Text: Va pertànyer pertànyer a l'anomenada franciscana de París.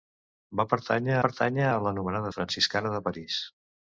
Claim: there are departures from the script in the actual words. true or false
false